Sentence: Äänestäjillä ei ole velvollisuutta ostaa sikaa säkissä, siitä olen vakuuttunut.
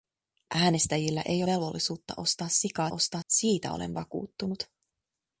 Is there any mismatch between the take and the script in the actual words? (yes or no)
yes